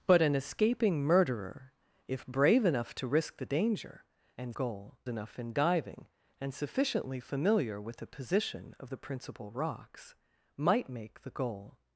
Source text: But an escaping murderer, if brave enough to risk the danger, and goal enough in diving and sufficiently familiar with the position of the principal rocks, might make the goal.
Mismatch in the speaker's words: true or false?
false